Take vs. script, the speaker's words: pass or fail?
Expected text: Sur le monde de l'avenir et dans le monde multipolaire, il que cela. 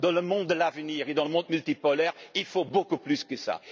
fail